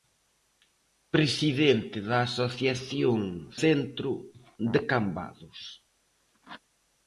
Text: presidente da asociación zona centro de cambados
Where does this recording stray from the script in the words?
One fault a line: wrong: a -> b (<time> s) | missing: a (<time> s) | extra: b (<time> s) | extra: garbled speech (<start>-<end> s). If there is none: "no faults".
missing: zona (3.2 s)